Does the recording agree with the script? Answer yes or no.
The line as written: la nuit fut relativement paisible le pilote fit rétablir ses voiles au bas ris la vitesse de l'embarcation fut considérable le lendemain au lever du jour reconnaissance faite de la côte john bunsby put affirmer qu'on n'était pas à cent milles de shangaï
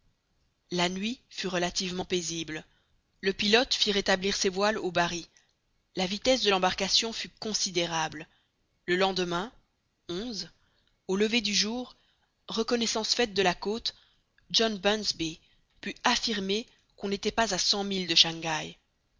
yes